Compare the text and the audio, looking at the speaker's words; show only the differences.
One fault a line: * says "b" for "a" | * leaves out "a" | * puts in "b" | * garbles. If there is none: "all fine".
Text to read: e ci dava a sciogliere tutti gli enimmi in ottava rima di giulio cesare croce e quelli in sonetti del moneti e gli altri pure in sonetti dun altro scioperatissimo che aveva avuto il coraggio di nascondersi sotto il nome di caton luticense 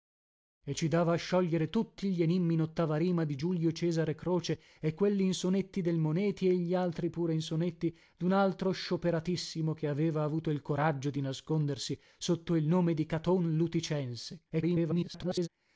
* garbles